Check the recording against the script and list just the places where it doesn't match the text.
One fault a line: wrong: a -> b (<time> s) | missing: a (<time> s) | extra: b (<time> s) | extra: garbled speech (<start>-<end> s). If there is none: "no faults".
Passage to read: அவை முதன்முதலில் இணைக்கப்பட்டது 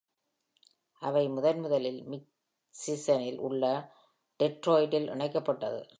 extra: மிச்சிகனில் உள்ள டெட்ராய்டில் (2.2 s)